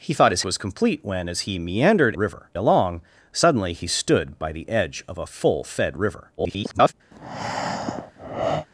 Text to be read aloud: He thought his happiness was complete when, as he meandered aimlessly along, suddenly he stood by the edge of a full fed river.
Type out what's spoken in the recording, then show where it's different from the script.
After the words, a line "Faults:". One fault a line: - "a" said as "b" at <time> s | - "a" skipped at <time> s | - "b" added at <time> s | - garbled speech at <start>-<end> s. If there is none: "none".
He thought his was complete when, as he meandered river along, suddenly he stood by the edge of a full fed river. [garbled]
Faults:
- "happiness" skipped at 0.4 s
- "aimlessly" said as "river" at 2.2 s
- garbled speech at 6.4-6.9 s